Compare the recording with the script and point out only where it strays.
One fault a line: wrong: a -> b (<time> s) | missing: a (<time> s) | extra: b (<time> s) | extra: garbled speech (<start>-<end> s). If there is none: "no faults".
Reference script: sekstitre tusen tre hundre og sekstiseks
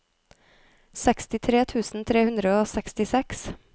no faults